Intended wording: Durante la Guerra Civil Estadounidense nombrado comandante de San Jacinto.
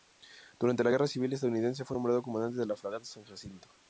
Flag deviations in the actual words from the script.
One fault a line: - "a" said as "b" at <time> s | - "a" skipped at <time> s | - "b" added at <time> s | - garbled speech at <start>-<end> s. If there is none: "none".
- "fue" added at 1.8 s
- "la fragata" added at 2.7 s